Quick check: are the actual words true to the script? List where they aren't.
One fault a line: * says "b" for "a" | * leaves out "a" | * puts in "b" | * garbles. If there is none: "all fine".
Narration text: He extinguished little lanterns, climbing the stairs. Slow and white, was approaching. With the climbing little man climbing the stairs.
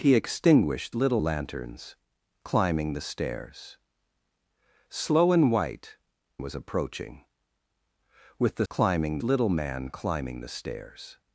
all fine